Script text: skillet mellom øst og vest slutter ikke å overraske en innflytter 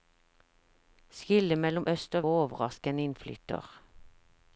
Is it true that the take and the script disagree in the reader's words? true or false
true